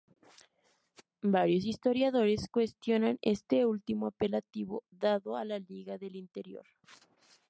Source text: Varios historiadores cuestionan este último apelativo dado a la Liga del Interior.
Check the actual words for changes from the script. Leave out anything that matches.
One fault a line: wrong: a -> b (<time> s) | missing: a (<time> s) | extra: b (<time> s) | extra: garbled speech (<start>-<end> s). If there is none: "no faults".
no faults